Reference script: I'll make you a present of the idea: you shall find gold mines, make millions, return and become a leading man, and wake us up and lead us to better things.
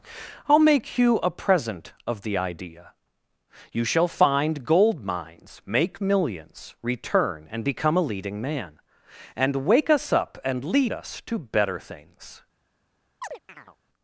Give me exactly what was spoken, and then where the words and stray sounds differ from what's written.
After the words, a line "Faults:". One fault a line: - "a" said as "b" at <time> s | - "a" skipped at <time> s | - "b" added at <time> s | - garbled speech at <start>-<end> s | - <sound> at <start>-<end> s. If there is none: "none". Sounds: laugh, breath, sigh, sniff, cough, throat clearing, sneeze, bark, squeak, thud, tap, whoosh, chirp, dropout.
I'll make you a present of the idea: you shall find gold mines, make millions, return and become a leading man, and wake us up and lead us to better things.
Faults:
- chirp at 13.2-13.8 s